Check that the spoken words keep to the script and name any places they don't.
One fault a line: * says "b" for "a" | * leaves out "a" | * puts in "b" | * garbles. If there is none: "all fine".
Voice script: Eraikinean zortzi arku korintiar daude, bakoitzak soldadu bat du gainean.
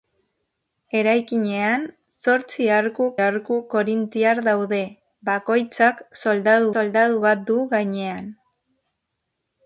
* puts in "arku"
* puts in "soldadu"